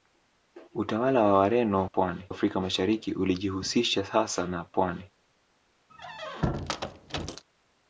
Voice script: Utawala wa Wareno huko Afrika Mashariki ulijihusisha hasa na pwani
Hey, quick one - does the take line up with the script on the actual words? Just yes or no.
no